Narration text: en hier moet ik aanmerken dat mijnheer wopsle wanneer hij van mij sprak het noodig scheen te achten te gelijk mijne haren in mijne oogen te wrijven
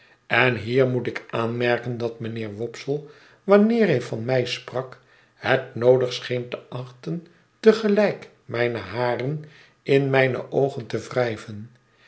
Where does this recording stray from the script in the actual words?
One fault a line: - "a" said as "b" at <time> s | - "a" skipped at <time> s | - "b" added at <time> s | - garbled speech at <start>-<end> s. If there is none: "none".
none